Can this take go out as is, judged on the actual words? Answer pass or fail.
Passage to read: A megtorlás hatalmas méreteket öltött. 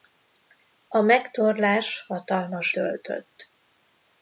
fail